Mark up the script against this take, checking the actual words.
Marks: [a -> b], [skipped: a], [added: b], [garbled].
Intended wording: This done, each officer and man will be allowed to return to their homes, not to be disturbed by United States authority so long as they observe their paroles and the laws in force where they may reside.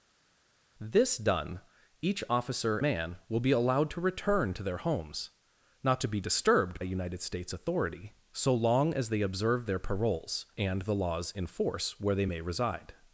This done, each officer [skipped: and] man will be allowed to return to their homes, not to be disturbed [skipped: by] United States authority so long as they observe their paroles and the laws in force where they may reside.